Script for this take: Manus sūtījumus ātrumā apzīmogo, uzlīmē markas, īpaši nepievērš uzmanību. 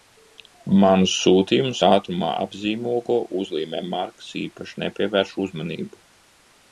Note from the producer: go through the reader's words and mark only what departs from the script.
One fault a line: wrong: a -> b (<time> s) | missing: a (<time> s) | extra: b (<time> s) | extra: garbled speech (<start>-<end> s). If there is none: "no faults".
no faults